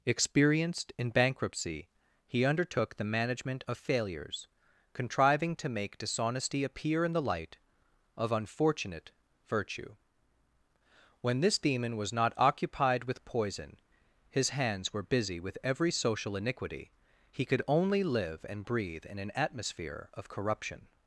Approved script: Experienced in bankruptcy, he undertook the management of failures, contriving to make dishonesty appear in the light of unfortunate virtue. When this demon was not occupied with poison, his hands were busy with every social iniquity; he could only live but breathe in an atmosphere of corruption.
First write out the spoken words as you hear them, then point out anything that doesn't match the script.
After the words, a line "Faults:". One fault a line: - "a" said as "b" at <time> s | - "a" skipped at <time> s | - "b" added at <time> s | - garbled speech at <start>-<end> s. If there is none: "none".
Experienced in bankruptcy, he undertook the management of failures, contriving to make dishonesty appear in the light of unfortunate virtue. When this demon was not occupied with poison, his hands were busy with every social iniquity; he could only live and breathe in an atmosphere of corruption.
Faults:
- "but" said as "and" at 18.5 s